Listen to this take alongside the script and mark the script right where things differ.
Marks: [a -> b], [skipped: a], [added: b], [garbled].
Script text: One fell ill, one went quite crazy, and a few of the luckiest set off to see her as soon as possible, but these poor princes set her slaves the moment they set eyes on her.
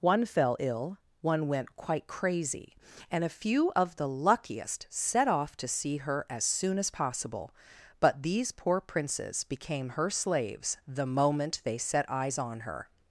One fell ill, one went quite crazy, and a few of the luckiest set off to see her as soon as possible, but these poor princes [set -> became] her slaves the moment they set eyes on her.